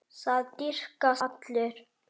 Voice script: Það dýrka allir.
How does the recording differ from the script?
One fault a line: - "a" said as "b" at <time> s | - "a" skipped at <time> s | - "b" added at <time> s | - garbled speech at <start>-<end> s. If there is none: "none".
none